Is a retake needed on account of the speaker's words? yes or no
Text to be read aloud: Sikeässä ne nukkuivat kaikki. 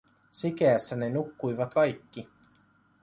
no